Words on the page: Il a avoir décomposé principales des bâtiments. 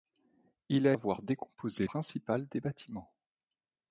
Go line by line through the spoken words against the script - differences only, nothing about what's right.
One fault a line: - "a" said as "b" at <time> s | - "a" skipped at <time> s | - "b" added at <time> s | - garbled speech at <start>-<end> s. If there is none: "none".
none